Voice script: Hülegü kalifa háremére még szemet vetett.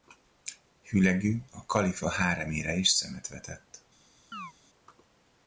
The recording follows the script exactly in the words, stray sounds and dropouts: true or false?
false